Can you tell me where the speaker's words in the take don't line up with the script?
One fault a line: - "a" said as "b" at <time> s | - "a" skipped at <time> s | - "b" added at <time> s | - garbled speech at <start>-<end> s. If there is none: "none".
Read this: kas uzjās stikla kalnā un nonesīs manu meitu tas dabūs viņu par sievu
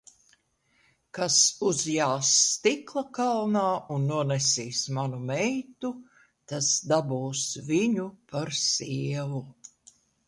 none